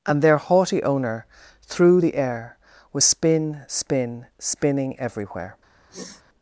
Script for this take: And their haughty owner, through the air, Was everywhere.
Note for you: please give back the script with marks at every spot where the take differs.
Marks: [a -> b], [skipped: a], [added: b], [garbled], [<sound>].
And their haughty owner, through the air, Was [added: spin spin spinning] everywhere. [sniff]